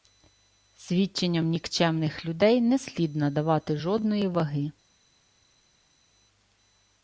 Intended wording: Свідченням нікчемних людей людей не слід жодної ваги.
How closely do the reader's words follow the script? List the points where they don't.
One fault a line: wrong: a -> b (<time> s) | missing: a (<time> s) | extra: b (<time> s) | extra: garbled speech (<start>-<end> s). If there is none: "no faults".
missing: людей (2.6 s)
extra: надавати (3.1 s)